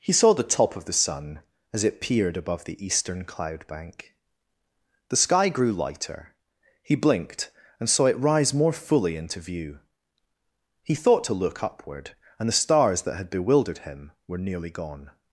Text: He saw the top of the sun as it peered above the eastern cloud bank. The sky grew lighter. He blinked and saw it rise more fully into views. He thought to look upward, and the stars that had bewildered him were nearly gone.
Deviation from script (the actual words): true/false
true